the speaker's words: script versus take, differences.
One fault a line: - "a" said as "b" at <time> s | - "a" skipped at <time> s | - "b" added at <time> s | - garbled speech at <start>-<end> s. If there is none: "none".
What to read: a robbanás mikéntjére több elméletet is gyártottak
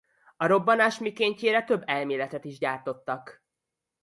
none